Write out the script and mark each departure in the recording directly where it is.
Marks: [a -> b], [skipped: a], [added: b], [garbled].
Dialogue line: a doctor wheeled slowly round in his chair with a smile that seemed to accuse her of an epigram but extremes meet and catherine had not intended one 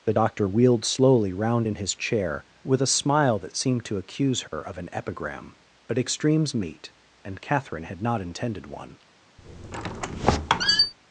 [a -> the] doctor wheeled slowly round in his chair with a smile that seemed to accuse her of an epigram but extremes meet and catherine had not intended one